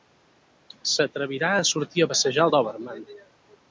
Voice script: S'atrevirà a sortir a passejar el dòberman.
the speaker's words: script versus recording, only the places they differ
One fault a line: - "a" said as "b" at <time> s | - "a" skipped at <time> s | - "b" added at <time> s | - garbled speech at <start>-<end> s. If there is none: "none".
none